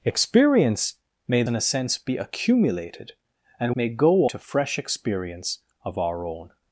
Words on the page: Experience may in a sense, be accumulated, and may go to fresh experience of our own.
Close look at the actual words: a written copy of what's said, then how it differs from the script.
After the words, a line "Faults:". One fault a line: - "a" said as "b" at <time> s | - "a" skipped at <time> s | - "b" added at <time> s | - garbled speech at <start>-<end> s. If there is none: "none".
Experience may in a sense, be accumulated, and may go to fresh experience of our own.
Faults:
none